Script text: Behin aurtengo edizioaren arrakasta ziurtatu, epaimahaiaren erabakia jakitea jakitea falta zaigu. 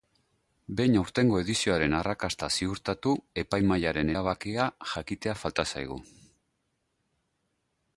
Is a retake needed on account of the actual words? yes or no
yes